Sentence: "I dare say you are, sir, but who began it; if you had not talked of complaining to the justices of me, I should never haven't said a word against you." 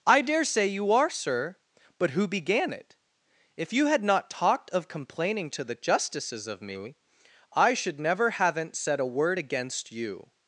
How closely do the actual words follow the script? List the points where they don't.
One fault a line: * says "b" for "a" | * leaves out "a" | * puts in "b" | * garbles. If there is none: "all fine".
all fine